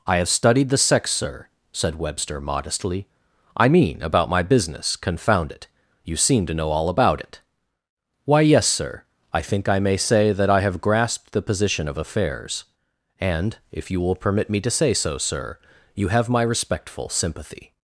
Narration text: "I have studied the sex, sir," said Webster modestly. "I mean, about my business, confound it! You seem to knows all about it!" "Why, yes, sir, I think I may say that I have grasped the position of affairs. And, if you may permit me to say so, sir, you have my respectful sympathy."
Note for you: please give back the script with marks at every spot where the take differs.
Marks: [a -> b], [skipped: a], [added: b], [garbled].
"I have studied the sex, sir," said Webster modestly. "I mean, about my business, confound it! You seem to [knows -> know] all about it!" "Why, yes, sir, I think I may say that I have grasped the position of affairs. And, if you [may -> will] permit me to say so, sir, you have my respectful sympathy."